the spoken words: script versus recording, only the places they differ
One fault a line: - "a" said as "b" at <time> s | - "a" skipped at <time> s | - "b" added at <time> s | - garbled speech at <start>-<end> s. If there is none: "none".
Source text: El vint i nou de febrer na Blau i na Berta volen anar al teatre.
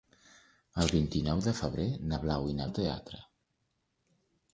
- "Berta volen anar" skipped at 2.7 s